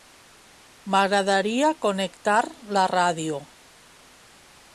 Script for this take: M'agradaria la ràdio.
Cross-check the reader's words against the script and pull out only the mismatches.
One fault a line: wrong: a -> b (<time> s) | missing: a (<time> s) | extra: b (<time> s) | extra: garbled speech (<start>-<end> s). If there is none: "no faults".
extra: connectar (1.9 s)